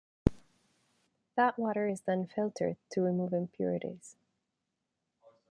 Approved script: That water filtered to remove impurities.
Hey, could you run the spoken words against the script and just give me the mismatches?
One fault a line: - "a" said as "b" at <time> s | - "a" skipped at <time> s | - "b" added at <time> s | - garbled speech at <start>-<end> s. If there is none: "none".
- "is then" added at 1.8 s